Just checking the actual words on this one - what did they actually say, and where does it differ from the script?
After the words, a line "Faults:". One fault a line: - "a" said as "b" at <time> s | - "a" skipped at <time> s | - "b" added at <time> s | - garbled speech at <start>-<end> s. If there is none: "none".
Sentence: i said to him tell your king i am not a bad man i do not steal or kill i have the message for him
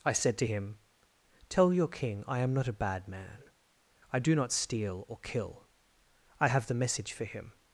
i said to him tell your king i am not a bad man i do not steal or kill i have the message for him
Faults:
none